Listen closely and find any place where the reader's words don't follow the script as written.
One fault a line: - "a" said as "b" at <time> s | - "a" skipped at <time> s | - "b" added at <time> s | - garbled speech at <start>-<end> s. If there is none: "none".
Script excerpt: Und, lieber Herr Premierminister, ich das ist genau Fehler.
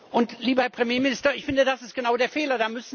- "finde" added at 1.4 s
- "der" added at 2.2 s